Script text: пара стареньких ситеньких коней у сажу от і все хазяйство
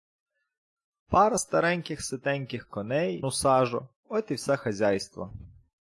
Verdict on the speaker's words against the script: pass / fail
pass